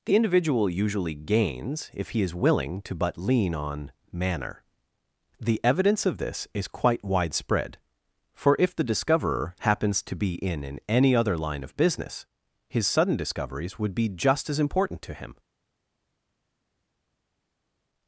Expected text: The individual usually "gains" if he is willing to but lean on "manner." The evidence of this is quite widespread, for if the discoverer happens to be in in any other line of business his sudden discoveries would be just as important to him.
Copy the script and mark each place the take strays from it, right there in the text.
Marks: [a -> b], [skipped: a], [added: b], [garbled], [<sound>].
The individual usually "gains" if he is willing to but lean on "manner." The evidence of this is quite widespread, for if the discoverer happens to be in in any other line of business his sudden discoveries would be just as important to him.